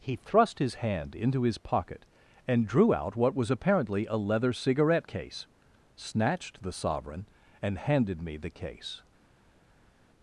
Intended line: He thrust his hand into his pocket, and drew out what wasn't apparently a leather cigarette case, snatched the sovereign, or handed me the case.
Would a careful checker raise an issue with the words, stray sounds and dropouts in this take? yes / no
yes